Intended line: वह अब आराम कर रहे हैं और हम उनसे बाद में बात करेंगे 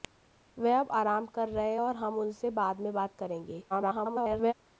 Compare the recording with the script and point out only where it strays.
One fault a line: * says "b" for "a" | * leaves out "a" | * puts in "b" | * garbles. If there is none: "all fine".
* garbles